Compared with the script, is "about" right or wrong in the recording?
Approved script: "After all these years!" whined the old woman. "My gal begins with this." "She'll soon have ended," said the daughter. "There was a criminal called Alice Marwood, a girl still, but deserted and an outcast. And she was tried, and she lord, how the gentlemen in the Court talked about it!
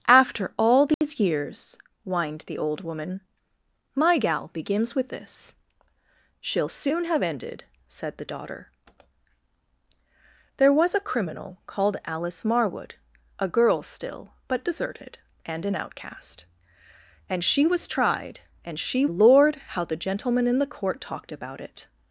right